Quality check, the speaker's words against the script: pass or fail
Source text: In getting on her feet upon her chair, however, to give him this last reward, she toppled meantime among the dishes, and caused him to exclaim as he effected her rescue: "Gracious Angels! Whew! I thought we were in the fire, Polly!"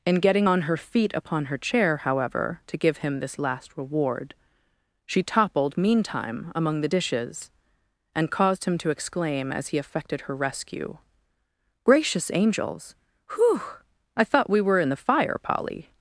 pass